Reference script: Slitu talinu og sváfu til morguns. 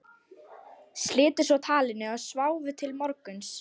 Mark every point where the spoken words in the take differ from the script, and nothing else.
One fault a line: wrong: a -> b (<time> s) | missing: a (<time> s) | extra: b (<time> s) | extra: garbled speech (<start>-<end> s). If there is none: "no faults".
extra: svo (1.5 s)